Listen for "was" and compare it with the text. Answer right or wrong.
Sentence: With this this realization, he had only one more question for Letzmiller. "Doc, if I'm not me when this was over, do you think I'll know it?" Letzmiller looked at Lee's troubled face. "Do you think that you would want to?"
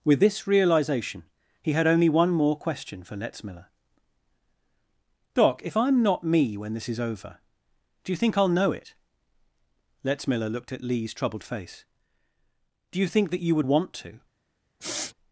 wrong